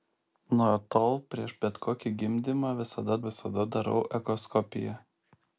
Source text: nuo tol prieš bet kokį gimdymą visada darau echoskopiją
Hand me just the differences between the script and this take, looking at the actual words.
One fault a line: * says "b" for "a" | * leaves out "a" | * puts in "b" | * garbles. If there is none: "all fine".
* puts in "visada"